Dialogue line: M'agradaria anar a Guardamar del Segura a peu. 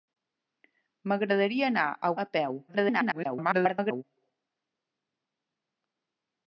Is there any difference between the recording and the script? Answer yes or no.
yes